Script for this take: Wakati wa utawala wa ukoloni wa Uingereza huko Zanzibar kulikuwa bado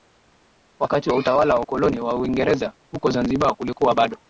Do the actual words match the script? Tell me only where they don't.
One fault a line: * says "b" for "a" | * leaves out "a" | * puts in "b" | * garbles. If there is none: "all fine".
all fine